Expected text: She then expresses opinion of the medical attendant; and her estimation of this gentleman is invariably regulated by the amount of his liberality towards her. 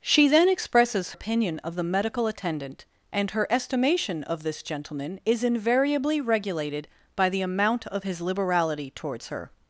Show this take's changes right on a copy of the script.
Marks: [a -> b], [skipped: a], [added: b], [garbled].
She then expresses opinion of the medical attendant; and her estimation of this gentleman is invariably regulated by the amount of his liberality towards her.